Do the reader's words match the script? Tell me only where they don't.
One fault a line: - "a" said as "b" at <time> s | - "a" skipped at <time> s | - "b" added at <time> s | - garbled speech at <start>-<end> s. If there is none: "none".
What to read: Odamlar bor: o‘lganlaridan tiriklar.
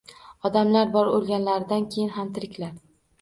- "keyin ham" added at 2.0 s